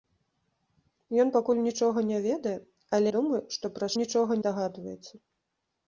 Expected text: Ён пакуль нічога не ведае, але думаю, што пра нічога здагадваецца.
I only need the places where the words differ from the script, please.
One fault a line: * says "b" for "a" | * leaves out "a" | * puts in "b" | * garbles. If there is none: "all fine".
all fine